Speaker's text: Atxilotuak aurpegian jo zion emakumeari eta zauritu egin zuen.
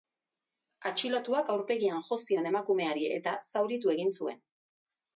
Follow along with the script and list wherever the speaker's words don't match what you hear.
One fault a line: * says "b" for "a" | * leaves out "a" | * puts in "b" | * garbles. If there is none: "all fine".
all fine